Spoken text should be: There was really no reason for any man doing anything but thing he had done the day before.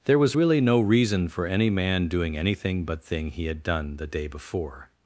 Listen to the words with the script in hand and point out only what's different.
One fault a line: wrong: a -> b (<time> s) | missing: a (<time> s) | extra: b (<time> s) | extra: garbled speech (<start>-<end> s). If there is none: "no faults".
no faults